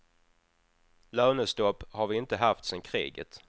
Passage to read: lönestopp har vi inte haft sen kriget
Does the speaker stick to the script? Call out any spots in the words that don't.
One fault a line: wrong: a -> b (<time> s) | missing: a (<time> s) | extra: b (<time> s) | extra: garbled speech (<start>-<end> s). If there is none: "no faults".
no faults